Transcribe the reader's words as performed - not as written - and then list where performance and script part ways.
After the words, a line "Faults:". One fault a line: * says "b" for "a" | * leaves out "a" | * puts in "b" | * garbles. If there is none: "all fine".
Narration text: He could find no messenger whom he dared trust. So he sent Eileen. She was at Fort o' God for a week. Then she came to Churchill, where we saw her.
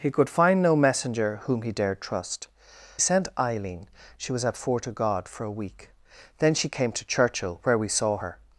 He could find no messenger whom he dared trust. Sent Eileen. She was at Fort o' God for a week. Then she came to Churchill, where we saw her.
Faults:
* leaves out "So he"